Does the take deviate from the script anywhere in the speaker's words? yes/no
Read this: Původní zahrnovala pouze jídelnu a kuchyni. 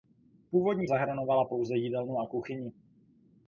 no